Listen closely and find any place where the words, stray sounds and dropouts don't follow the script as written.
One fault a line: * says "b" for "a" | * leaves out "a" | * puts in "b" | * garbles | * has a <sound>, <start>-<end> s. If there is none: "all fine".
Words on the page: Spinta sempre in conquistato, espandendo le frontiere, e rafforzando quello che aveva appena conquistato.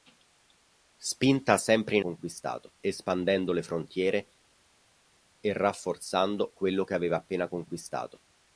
all fine